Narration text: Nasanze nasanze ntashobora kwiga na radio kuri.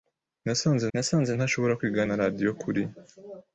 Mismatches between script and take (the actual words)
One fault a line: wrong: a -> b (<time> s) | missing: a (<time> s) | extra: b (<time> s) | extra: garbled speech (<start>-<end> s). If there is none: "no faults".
no faults